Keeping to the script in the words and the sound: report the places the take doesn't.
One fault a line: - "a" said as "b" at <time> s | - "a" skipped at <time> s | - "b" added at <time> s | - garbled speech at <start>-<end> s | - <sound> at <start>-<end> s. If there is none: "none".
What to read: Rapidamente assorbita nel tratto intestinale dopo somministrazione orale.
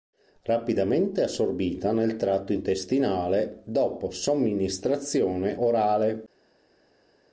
none